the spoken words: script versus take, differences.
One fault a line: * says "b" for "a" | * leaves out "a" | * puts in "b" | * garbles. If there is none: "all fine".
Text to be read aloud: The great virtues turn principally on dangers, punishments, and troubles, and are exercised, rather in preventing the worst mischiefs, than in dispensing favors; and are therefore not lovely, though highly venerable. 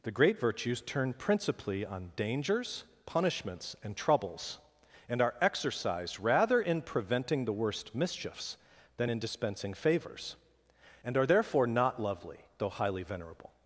all fine